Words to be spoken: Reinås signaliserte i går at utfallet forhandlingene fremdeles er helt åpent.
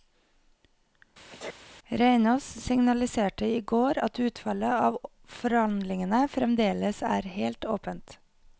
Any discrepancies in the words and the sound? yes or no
yes